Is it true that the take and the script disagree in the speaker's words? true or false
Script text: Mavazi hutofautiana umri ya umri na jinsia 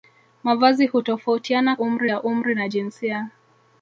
false